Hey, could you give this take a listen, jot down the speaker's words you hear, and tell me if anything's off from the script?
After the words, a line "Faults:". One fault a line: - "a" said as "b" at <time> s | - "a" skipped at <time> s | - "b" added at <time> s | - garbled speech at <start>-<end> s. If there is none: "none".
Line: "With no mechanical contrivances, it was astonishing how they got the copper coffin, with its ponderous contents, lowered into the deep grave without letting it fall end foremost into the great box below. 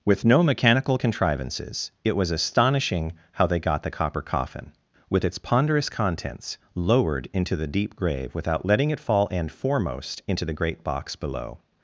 "With no mechanical contrivances, it was astonishing how they got the copper coffin, with its ponderous contents, lowered into the deep grave without letting it fall end foremost into the great box below.
Faults:
none